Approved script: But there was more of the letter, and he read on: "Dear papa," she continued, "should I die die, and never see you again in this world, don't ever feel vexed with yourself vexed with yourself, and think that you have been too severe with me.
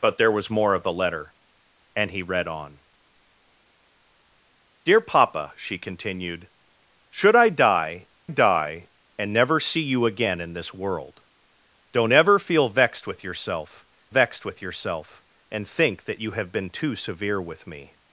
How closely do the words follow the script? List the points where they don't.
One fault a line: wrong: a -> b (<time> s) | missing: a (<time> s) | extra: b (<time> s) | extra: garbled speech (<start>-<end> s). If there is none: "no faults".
no faults